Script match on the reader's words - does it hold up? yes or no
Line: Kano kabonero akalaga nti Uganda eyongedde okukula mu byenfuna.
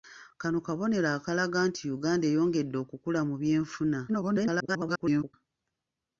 no